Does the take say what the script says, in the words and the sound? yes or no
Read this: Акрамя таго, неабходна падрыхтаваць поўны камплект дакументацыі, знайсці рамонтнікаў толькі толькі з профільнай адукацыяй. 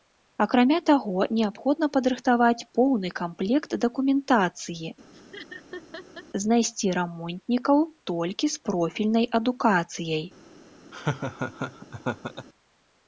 no